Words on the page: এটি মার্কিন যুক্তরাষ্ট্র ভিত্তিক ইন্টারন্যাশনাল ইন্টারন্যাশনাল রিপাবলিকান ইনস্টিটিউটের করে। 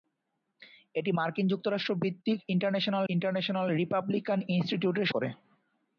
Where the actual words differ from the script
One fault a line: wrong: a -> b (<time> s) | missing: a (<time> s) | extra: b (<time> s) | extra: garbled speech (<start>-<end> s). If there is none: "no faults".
no faults